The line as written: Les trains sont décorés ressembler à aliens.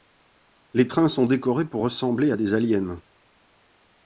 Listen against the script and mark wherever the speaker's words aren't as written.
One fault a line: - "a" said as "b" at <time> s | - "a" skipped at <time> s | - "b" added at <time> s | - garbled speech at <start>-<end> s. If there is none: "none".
- "pour" added at 1.7 s
- "des" added at 2.4 s